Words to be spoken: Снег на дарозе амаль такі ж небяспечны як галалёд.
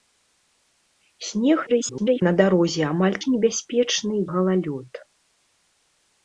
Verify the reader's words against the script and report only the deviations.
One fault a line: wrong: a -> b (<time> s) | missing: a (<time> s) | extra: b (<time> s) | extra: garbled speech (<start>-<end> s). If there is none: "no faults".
extra: garbled speech (1.7-2.2 s)
missing: такі (3.2 s)
missing: як (4.2 s)